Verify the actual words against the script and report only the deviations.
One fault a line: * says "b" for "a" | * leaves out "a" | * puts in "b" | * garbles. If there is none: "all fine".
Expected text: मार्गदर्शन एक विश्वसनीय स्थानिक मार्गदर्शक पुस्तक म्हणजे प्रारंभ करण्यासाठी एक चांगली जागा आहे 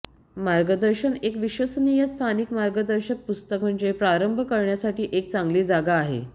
all fine